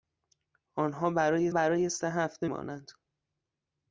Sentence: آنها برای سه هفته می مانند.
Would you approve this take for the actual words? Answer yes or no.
no